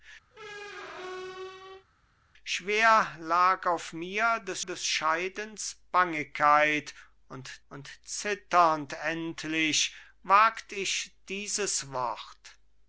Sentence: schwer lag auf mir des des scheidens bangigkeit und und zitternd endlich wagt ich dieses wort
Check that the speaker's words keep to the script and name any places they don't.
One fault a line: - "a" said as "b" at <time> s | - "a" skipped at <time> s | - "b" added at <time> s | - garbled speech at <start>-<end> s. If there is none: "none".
none